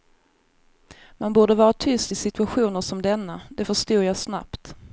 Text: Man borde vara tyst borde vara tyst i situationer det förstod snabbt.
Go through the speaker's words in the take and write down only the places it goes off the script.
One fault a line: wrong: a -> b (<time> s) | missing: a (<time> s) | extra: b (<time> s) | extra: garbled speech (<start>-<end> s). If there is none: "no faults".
wrong: borde vara tyst i situationer -> i situationer som denna (2.1 s)
extra: jag (4.0 s)